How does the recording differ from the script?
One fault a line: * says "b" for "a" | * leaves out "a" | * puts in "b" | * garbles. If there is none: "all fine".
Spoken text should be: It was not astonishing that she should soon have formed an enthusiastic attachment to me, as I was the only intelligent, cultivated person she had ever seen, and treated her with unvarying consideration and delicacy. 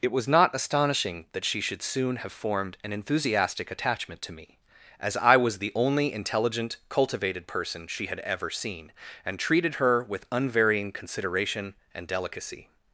all fine